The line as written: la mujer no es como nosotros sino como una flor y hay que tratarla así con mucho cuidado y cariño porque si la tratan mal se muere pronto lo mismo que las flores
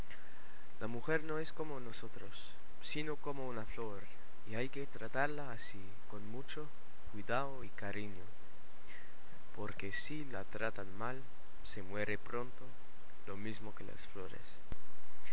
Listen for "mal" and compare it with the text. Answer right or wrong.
right